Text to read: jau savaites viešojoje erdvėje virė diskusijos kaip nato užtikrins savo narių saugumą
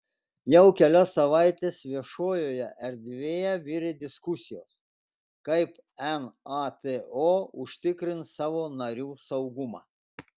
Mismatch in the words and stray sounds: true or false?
true